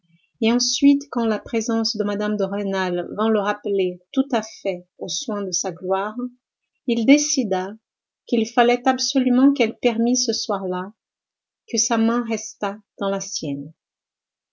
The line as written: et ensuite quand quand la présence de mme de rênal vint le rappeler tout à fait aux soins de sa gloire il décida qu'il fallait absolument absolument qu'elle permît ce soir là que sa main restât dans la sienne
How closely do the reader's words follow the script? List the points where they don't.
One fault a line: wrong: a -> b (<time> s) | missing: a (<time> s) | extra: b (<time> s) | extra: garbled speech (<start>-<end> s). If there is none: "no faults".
missing: quand (1.3 s)
missing: absolument (9.5 s)